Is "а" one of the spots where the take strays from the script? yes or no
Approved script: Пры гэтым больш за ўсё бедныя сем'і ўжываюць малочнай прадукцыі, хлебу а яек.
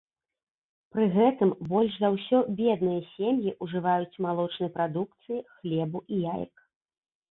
yes